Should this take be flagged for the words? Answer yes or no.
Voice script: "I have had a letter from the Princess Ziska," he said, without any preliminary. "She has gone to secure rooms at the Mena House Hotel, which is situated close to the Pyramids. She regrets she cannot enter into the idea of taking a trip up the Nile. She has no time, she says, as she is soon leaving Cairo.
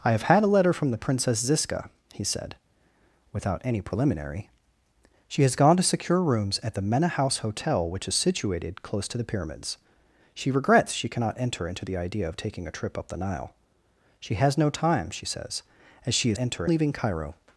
yes